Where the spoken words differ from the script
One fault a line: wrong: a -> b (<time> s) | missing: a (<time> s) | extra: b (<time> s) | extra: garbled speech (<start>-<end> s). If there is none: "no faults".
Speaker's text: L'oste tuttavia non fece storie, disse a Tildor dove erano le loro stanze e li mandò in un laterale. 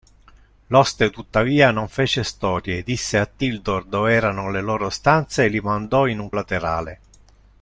no faults